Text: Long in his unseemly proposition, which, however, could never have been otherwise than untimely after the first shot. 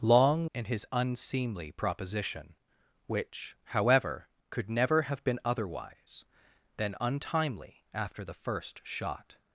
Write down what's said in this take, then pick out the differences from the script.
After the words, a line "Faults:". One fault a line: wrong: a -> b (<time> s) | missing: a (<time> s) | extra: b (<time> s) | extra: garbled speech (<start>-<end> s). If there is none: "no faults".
Long in his unseemly proposition, which, however, could never have been otherwise than untimely after the first shot.
Faults:
no faults